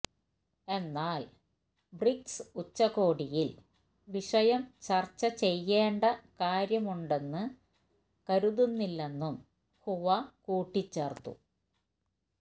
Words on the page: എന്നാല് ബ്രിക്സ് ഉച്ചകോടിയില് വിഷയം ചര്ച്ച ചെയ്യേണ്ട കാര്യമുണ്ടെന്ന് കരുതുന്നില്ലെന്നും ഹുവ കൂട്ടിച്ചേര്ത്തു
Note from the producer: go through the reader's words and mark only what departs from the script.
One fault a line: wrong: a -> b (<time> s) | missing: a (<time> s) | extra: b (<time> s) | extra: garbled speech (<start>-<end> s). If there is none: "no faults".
no faults